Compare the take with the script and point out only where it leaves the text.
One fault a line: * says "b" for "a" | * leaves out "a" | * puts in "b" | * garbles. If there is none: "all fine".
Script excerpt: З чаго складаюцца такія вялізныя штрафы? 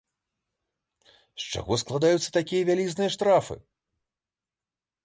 all fine